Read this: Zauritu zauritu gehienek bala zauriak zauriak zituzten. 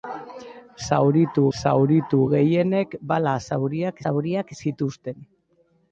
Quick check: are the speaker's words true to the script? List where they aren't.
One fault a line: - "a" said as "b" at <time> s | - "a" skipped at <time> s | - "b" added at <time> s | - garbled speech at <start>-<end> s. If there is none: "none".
none